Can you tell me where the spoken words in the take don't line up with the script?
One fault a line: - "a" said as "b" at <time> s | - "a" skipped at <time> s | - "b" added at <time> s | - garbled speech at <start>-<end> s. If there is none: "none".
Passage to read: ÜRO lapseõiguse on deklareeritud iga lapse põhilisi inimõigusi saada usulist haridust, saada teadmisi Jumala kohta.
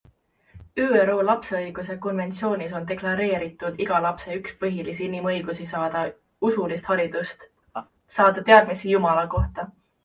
- "konventsioonis" added at 2.0 s
- "üks" added at 4.4 s